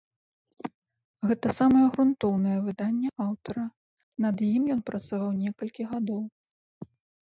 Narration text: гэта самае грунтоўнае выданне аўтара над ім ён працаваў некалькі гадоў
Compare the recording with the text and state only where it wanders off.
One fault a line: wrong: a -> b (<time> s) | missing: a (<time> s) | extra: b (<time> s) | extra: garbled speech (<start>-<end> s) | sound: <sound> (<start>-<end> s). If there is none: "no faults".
no faults